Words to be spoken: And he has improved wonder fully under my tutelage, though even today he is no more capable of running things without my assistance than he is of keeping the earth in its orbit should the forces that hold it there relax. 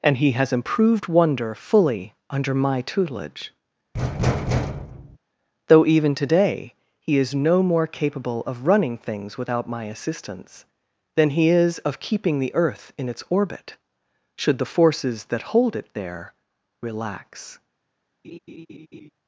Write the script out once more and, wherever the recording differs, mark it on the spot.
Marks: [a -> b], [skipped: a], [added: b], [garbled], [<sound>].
And he has improved wonder fully under my tutelage, [thud] though even today he is no more capable of running things without my assistance than he is of keeping the earth in its orbit should the forces that hold it there relax. [laugh]